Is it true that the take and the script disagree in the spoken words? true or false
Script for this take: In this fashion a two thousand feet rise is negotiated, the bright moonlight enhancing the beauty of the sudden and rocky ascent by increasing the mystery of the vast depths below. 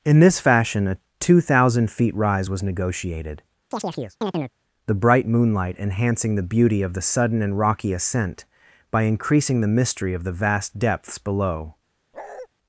true